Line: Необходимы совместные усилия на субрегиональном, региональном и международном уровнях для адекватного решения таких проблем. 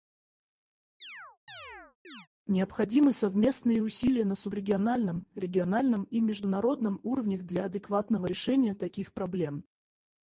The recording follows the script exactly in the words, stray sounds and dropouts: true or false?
false